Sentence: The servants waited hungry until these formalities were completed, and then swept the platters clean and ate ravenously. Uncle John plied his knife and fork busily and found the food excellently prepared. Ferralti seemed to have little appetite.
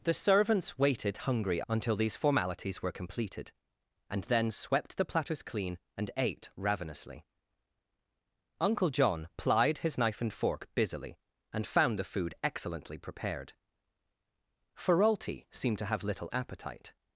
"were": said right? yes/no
yes